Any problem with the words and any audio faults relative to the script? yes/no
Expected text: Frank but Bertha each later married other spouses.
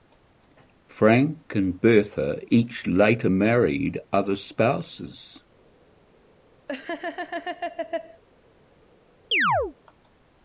yes